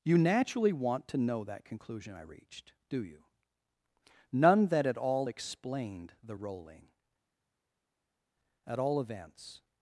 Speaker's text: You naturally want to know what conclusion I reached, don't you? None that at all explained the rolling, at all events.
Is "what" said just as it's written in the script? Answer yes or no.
no